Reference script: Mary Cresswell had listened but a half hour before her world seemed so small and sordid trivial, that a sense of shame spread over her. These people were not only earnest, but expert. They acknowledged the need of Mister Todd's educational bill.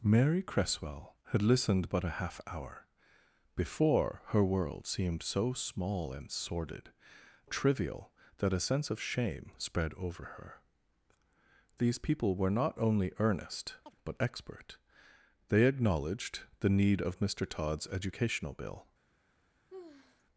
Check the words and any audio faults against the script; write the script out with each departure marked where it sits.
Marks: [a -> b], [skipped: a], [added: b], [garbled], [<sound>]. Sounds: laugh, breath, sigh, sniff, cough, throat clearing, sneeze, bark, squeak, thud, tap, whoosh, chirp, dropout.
Mary Cresswell had listened but a half hour before her world seemed so small and sordid trivial, that a sense of shame spread over her. These people were not only earnest, [chirp] but expert. They acknowledged the need of Mister Todd's educational bill. [sigh]